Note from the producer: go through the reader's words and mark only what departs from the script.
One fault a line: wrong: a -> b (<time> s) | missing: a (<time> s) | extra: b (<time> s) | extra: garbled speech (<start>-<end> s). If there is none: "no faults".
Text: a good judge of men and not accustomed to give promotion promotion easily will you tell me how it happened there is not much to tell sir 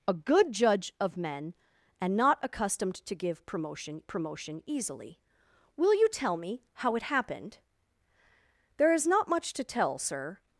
no faults